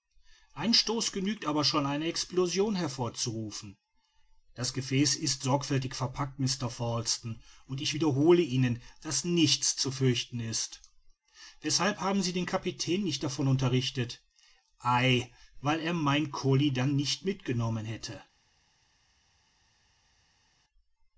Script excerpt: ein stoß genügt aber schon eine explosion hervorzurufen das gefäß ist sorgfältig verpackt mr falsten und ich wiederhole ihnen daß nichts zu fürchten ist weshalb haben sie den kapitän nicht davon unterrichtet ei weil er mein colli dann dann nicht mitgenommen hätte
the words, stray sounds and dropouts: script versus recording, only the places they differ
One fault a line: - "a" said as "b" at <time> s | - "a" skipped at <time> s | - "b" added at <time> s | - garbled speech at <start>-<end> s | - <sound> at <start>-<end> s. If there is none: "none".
- "dann" skipped at 17.0 s